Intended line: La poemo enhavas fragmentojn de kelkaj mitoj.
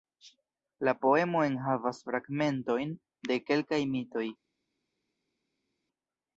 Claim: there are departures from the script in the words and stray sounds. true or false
false